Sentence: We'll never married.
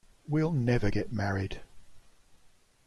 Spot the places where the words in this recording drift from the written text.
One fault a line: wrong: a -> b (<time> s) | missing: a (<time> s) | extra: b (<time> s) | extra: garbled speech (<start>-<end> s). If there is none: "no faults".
extra: get (0.9 s)